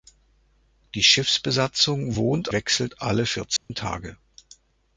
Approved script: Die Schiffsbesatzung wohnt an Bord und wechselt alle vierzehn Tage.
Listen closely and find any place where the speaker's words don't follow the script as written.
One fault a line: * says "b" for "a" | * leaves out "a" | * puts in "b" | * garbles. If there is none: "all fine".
* leaves out "an Bord und"